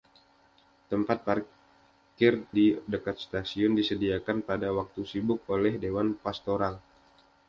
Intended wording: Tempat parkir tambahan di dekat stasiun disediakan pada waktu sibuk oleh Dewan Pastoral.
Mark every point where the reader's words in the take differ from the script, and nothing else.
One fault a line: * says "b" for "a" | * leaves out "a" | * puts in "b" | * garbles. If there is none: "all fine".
* leaves out "tambahan"